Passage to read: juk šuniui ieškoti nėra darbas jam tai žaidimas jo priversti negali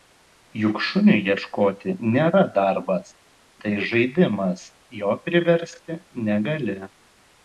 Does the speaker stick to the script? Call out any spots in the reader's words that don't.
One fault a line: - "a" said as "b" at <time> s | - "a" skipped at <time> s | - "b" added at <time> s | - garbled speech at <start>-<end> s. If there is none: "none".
- "jam" skipped at 3.1 s